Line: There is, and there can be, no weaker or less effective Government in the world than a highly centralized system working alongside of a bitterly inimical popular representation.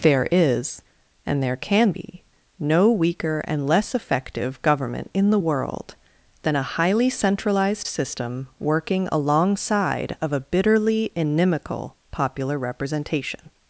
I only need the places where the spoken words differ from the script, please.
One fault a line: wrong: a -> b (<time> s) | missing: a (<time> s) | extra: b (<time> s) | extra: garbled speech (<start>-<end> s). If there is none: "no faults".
wrong: or -> and (3.5 s)